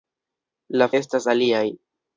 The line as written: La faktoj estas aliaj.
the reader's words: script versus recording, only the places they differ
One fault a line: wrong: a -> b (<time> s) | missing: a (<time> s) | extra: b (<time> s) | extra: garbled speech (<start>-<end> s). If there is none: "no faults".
missing: faktoj (0.9 s)